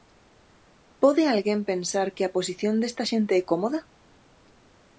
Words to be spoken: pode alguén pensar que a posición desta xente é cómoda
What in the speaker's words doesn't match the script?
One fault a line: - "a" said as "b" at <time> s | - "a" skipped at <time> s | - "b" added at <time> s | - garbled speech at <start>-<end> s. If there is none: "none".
none